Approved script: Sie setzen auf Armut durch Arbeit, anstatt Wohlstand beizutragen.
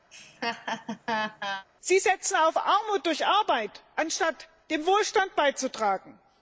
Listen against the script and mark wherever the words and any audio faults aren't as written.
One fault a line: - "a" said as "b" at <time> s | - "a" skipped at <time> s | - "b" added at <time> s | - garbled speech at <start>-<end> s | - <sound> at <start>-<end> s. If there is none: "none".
- laugh at 0.1-1.7 s
- "zum" added at 4.7 s